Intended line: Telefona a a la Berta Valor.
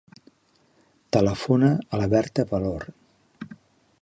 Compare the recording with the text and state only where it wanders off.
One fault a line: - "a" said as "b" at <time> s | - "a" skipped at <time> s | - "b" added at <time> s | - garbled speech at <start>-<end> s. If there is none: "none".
- "a" skipped at 2.0 s